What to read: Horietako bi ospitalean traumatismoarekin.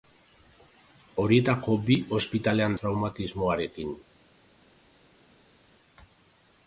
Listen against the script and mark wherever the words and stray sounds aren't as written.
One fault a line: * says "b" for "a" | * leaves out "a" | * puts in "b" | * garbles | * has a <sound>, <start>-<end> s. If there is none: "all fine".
all fine